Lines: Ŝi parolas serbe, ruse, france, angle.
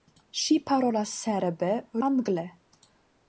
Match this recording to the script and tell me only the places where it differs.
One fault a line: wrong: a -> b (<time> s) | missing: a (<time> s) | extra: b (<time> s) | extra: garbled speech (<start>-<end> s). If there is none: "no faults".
missing: ruse france (1.7 s)